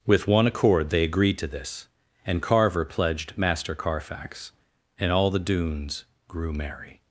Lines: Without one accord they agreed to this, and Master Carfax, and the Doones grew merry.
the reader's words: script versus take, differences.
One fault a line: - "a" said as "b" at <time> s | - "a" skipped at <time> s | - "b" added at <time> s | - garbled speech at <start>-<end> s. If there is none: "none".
- "Without" said as "With" at 0.1 s
- "Carver pledged" added at 2.4 s
- "all" added at 5.1 s